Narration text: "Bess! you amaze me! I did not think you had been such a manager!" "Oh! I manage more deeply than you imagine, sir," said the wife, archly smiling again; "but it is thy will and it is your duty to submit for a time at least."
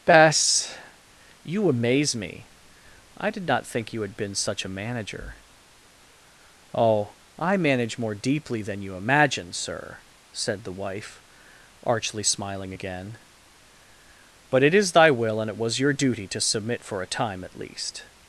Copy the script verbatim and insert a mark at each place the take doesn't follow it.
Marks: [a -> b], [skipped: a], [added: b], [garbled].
"Bess! you amaze me! I did not think you had been such a manager!" "Oh! I manage more deeply than you imagine, sir," said the wife, archly smiling again; "but it is thy will and it [is -> was] your duty to submit for a time at least."